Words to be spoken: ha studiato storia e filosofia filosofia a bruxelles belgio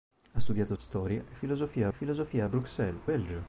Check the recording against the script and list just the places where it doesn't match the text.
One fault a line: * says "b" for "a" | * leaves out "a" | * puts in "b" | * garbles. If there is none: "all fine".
all fine